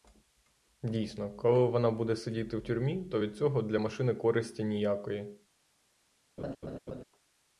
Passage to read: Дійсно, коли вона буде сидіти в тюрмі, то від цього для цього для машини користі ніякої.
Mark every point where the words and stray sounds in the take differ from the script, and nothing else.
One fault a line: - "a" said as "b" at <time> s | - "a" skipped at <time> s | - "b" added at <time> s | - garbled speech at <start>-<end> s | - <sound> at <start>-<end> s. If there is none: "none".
- "цього для" skipped at 3.8 s
- laugh at 6.4-7.0 s